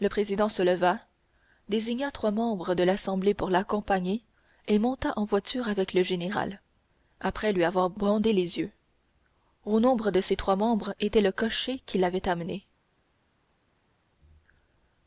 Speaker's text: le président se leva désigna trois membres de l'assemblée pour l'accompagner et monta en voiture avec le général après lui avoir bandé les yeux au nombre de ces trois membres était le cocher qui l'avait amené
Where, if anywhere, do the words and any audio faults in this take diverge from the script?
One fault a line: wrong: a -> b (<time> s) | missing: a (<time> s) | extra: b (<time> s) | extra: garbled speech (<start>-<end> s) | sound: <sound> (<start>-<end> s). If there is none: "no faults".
no faults